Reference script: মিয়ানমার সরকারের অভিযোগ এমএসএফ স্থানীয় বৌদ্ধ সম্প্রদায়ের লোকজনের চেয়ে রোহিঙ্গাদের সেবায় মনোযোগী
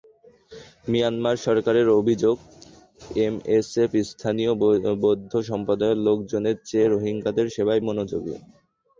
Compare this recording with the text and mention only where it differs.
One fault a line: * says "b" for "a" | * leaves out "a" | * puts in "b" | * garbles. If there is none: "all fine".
all fine